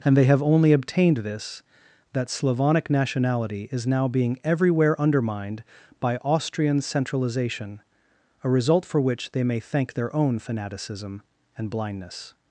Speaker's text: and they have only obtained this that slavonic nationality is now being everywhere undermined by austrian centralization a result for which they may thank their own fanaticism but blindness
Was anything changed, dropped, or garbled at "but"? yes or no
yes